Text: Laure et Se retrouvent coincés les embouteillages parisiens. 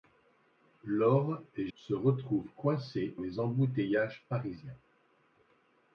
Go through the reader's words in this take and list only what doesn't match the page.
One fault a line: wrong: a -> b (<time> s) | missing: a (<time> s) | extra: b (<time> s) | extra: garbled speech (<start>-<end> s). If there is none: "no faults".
no faults